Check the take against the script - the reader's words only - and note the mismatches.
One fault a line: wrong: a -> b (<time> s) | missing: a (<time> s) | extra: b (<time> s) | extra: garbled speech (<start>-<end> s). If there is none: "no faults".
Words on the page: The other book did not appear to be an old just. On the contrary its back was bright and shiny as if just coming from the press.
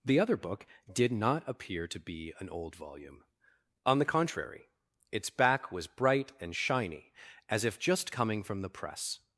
wrong: just -> volume (2.8 s)